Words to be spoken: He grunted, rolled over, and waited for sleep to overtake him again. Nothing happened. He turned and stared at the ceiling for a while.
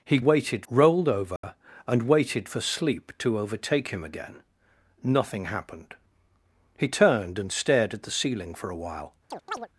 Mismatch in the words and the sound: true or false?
true